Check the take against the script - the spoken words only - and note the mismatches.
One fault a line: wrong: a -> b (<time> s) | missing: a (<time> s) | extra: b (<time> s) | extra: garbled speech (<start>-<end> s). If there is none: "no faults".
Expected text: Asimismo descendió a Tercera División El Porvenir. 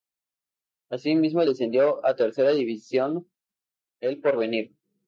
no faults